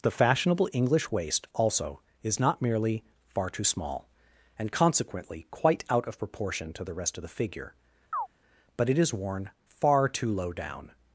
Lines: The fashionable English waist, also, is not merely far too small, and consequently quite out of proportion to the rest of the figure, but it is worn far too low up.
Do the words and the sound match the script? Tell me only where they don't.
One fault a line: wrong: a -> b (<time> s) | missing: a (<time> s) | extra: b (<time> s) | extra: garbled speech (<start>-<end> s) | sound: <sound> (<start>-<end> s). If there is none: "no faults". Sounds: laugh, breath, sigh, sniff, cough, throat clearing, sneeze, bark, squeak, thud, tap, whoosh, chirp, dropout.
sound: chirp (8.1-8.3 s)
wrong: up -> down (10.5 s)